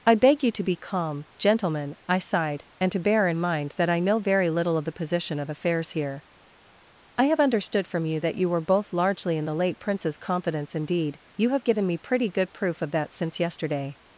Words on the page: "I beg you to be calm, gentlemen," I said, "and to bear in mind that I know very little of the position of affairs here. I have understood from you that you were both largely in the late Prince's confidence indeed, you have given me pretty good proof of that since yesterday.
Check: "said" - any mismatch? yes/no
yes